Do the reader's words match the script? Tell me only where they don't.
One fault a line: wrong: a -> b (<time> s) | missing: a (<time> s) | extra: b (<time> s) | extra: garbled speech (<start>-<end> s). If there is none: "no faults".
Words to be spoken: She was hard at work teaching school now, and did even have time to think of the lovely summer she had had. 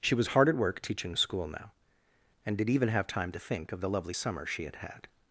no faults